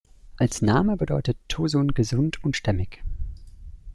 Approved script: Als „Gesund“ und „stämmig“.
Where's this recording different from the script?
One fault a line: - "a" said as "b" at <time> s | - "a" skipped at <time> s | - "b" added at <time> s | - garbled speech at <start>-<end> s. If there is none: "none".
- "Name bedeutet Tosun" added at 0.6 s